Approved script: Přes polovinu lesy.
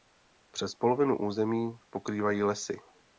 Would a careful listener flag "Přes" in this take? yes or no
no